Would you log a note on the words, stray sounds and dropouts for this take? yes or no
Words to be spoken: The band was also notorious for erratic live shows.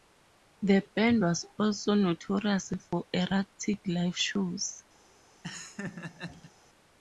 yes